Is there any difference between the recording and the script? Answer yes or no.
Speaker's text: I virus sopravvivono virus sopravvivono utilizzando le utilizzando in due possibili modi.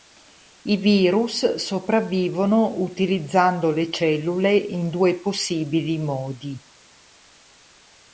yes